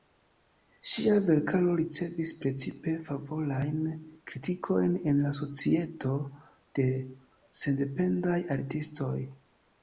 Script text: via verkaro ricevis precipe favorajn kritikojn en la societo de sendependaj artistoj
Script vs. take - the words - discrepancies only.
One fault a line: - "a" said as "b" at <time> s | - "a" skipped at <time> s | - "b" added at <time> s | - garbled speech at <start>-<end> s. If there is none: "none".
- "via" said as "ŝia" at 0.9 s